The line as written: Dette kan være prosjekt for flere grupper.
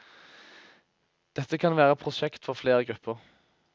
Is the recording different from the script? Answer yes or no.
no